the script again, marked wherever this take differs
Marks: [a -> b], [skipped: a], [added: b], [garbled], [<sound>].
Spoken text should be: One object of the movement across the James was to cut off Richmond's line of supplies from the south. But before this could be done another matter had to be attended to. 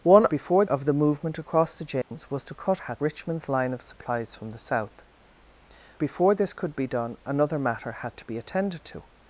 One [object -> before] of the movement across the James [dropout] was to cut [off -> had] Richmond's line of supplies from the south. [skipped: But] before this could be done another matter had to be attended to.